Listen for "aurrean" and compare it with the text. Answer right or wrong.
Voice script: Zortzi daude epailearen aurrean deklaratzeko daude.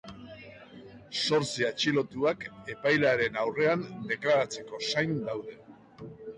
right